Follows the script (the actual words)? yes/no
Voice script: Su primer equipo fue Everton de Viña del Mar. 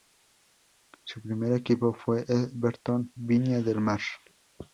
no